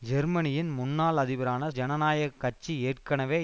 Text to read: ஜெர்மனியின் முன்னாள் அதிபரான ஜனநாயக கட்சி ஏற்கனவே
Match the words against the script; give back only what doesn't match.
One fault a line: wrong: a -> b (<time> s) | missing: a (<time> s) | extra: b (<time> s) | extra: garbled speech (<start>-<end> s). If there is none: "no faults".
no faults